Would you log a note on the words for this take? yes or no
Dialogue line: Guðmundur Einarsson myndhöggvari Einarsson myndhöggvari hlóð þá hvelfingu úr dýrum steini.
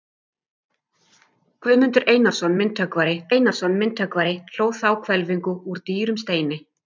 no